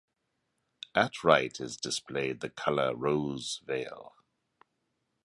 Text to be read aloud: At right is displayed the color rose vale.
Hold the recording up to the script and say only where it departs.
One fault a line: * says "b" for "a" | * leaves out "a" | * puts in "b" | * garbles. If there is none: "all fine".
all fine